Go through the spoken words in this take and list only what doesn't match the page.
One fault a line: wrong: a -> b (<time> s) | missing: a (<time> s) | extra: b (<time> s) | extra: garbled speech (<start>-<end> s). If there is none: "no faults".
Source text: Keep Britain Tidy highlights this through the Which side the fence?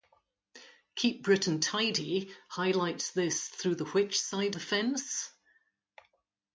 no faults